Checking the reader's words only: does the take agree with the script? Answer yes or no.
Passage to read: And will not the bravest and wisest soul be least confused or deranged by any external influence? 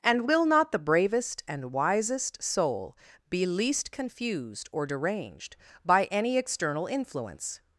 yes